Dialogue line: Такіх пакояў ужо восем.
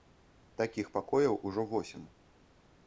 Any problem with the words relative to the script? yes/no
no